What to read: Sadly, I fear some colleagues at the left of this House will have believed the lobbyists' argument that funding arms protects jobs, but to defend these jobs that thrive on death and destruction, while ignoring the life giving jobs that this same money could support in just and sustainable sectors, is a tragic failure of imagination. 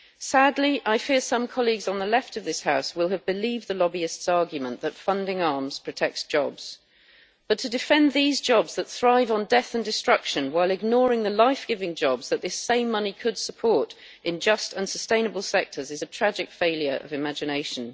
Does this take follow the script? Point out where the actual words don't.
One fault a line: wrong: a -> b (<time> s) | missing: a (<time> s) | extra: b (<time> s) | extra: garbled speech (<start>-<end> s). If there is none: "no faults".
wrong: at -> on (1.9 s)